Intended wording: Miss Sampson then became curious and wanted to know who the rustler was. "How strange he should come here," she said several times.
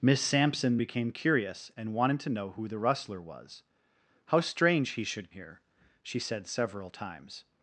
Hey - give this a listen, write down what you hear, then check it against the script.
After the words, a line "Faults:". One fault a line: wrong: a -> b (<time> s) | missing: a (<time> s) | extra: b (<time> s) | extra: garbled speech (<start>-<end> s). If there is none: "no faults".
Miss Sampson became curious and wanted to know who the rustler was. "How strange he should here," she said several times.
Faults:
missing: then (0.8 s)
missing: come (5.3 s)